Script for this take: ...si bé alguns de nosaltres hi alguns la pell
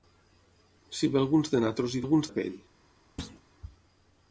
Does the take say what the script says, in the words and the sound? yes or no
no